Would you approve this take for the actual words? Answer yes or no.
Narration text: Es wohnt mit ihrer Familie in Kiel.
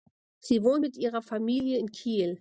no